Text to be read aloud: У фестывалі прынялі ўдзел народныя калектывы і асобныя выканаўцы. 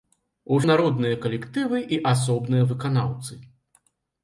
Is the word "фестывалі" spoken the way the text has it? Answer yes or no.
no